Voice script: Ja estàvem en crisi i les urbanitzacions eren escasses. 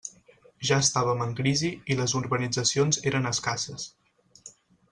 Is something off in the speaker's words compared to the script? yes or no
no